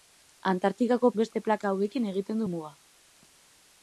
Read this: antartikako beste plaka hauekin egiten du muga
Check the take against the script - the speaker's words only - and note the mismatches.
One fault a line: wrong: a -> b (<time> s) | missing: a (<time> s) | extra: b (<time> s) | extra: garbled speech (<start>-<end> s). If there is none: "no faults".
no faults